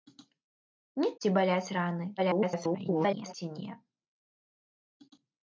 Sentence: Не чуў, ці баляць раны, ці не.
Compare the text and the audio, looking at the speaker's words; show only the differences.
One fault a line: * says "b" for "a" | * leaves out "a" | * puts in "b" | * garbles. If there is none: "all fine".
* leaves out "чуў"
* garbles